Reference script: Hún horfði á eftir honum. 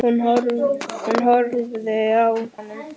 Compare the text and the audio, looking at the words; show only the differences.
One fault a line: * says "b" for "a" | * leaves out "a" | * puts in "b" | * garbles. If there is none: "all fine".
* leaves out "eftir"